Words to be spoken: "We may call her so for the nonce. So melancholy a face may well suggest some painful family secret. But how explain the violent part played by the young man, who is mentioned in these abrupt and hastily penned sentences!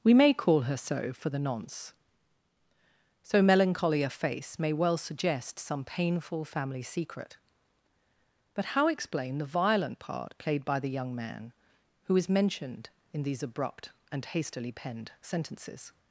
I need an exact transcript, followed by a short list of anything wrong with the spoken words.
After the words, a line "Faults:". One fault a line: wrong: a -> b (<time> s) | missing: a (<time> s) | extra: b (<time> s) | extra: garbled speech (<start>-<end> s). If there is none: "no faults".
"We may call her so for the nonce. So melancholy a face may well suggest some painful family secret. But how explain the violent part played by the young man, who is mentioned in these abrupt and hastily penned sentences!
Faults:
no faults